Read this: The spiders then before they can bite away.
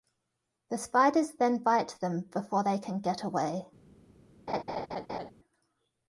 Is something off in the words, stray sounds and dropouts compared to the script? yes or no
yes